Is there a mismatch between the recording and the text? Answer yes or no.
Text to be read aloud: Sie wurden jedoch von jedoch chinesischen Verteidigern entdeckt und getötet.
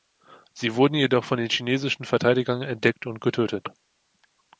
yes